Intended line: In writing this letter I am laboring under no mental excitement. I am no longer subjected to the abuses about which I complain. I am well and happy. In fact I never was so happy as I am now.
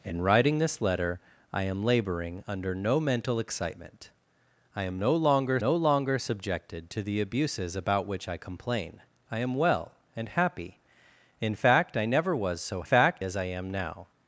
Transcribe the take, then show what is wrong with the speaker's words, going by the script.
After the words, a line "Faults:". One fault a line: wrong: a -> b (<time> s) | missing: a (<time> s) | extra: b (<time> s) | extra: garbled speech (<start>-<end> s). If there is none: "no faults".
In writing this letter I am laboring under no mental excitement. I am no longer no longer subjected to the abuses about which I complain. I am well and happy. In fact I never was so fact as I am now.
Faults:
extra: no longer (5.6 s)
wrong: happy -> fact (12.8 s)